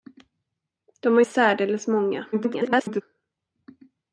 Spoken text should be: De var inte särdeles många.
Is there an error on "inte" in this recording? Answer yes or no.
yes